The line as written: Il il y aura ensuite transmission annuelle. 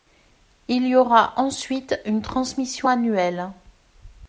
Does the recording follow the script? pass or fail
fail